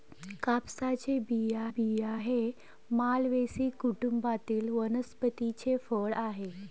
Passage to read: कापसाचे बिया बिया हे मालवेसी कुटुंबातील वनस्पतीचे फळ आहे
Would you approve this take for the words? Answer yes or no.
yes